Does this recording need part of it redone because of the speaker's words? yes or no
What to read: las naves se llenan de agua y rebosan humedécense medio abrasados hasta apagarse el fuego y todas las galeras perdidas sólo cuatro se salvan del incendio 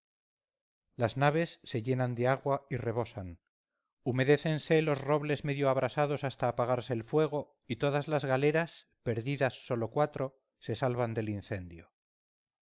yes